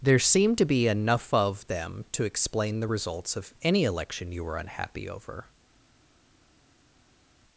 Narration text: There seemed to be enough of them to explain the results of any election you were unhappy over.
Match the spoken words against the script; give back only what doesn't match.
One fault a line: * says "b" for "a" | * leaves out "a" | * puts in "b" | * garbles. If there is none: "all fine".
all fine